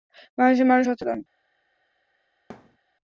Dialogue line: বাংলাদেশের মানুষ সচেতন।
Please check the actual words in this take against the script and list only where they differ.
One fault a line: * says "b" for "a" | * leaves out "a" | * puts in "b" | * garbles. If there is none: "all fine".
all fine